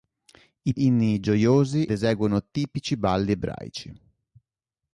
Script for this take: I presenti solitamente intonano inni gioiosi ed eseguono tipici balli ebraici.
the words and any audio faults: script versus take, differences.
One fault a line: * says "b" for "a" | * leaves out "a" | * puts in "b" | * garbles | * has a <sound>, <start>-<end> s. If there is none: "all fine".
* leaves out "presenti solitamente intonano"
* leaves out "ed"